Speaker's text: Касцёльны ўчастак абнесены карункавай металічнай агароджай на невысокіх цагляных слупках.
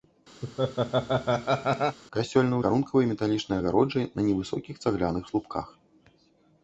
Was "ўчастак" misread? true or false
true